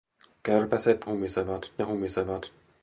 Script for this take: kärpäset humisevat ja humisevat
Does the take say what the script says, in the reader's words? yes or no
yes